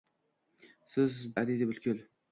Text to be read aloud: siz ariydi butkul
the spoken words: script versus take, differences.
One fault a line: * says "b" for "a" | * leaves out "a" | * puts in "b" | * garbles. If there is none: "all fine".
all fine